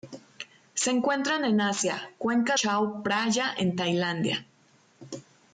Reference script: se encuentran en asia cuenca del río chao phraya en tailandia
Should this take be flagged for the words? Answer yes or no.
yes